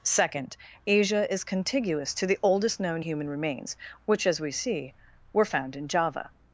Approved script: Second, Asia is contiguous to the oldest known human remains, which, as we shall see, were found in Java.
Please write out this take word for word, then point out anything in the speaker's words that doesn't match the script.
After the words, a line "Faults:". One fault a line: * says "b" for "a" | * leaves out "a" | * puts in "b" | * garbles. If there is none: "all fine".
Second, Asia is contiguous to the oldest known human remains, which, as we see, were found in Java.
Faults:
* leaves out "shall"